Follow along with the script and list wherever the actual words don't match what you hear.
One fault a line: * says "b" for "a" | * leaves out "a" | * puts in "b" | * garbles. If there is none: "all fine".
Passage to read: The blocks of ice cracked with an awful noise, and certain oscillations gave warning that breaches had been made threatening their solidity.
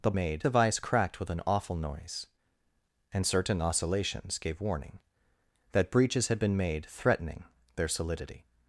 * says "made" for "blocks"